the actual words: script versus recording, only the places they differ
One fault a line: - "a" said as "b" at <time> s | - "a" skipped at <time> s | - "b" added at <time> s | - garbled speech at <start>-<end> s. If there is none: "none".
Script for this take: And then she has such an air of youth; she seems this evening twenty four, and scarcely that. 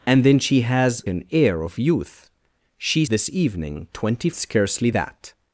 - "such" skipped at 1.0 s
- "seems" skipped at 3.0 s
- "four and" skipped at 4.3 s